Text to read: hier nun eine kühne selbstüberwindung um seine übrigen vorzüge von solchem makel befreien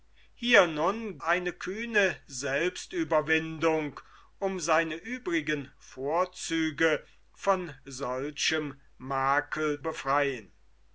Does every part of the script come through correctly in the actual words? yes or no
yes